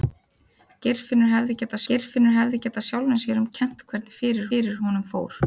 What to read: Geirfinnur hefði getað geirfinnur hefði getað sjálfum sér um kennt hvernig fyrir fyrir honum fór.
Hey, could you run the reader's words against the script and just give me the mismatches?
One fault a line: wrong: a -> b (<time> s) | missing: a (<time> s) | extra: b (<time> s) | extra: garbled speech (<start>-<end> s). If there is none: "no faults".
no faults